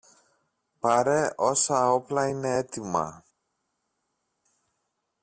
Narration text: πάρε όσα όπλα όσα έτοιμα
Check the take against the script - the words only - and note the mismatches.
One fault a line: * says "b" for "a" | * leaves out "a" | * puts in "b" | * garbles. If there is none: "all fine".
* says "είναι" for "όσα"